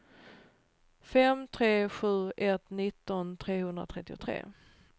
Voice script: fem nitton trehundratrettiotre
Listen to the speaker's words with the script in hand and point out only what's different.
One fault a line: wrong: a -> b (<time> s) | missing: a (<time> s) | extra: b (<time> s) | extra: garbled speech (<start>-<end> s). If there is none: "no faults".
extra: tre sju ett (1.5 s)